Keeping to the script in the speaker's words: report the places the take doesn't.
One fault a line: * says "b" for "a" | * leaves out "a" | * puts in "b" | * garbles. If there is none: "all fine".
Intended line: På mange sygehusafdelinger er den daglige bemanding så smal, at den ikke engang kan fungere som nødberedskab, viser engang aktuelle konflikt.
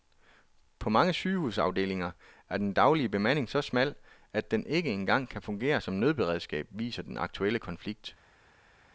* says "den" for "engang"